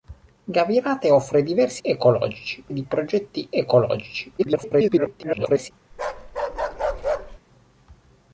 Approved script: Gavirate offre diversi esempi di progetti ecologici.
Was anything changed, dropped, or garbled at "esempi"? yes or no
yes